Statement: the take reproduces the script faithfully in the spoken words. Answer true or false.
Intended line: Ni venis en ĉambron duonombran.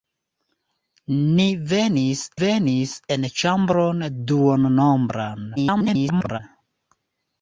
false